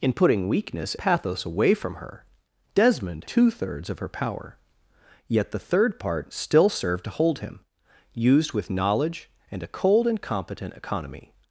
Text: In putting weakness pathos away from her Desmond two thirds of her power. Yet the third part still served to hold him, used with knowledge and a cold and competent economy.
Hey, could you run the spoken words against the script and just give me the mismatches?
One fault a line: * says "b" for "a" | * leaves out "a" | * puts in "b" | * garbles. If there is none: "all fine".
all fine